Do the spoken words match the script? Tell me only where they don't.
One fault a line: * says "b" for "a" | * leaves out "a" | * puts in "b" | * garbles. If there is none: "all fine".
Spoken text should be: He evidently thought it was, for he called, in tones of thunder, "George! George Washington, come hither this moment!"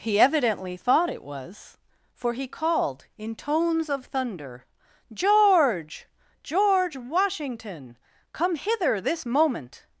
all fine